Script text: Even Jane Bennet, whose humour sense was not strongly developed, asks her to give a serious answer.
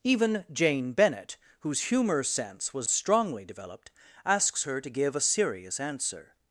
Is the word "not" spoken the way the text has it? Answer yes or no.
no